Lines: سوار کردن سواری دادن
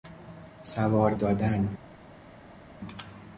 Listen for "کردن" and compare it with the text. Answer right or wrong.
wrong